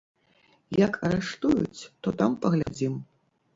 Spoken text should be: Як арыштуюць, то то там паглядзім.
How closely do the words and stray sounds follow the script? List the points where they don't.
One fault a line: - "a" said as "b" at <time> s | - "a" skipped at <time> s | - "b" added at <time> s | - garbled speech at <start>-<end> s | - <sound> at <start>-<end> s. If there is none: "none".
- "то" skipped at 2.1 s
- dropout at 2.6-2.7 s